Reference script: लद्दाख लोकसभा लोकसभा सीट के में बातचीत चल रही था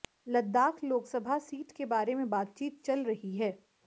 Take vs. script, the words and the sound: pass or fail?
fail